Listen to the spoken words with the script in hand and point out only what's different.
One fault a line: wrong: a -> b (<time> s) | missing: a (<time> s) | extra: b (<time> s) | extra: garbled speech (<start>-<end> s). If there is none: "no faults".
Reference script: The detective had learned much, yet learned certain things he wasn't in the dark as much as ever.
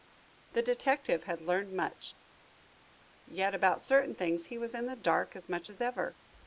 wrong: learned -> about (3.5 s)
wrong: wasn't -> was (4.6 s)